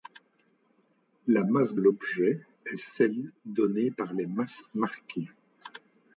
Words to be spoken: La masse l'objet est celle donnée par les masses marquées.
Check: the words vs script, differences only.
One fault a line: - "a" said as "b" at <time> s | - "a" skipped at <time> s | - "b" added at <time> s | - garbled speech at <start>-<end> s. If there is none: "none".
none